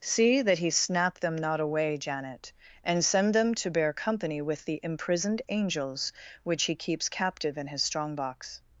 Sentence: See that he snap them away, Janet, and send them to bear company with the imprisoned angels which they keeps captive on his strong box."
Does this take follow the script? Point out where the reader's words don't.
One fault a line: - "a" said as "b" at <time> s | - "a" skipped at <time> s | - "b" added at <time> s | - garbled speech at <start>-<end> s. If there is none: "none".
- "not" added at 1.4 s
- "they" said as "he" at 6.6 s
- "on" said as "in" at 7.5 s